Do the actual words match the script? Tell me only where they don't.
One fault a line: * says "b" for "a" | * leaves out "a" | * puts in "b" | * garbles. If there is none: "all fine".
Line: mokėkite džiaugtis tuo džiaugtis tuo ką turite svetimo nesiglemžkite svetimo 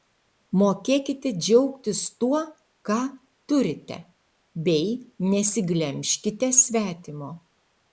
* leaves out "džiaugtis tuo"
* says "bei" for "svetimo"